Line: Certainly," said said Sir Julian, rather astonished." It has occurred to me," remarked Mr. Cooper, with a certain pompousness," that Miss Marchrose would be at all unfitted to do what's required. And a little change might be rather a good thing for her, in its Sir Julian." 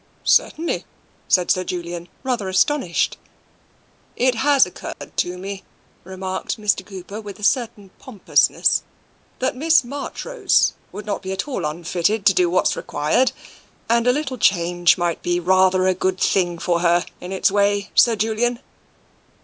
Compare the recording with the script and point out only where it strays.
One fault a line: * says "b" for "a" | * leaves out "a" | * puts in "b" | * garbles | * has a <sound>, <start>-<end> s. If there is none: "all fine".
* leaves out "said"
* has a dropout, 4.9-5.0 s
* puts in "not"
* puts in "way"